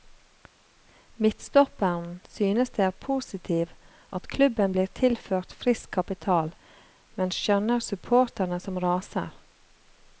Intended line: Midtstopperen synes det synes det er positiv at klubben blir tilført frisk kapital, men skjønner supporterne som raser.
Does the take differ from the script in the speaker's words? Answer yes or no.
yes